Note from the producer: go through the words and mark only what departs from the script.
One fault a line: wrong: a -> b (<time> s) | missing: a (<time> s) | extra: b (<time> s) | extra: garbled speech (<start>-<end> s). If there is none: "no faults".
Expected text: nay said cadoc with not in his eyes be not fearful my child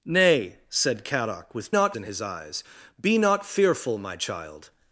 no faults